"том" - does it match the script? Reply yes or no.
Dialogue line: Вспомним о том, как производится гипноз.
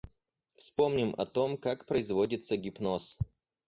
yes